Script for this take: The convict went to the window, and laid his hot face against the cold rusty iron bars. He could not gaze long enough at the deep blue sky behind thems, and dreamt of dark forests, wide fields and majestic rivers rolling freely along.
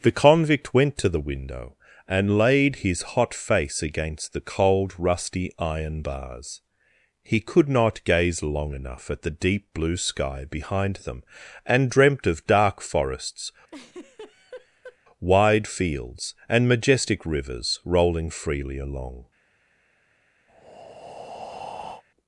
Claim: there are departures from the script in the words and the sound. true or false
true